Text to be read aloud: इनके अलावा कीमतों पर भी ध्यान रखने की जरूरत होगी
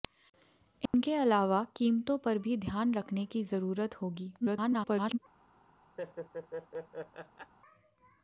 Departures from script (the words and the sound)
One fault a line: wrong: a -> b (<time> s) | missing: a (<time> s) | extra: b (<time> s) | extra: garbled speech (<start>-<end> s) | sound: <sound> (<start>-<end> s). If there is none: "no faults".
sound: dropout (0.9-0.9 s)
extra: garbled speech (4.4-5.2 s)
sound: laugh (6.0-7.5 s)